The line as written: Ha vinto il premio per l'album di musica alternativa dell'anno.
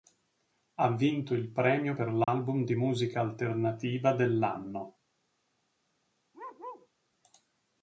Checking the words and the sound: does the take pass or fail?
fail